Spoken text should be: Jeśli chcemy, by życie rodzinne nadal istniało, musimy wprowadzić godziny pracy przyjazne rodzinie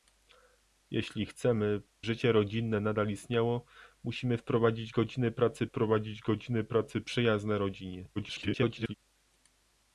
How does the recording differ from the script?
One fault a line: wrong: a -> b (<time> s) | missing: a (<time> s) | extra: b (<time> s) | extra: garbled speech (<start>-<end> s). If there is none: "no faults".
missing: by (1.8 s)
extra: wprowadzić godziny pracy (5.6 s)
extra: garbled speech (8.2-8.9 s)